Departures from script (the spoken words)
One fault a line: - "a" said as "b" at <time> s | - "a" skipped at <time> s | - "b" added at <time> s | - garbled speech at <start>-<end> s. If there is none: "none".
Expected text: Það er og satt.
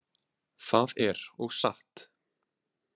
none